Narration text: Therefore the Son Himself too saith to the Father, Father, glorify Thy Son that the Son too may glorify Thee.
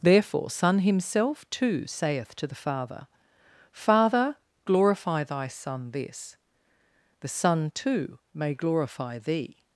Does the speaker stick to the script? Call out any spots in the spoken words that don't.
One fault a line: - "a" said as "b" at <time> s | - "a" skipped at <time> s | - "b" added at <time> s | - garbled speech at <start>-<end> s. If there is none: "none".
- "the" skipped at 0.5 s
- "that" said as "this" at 5.9 s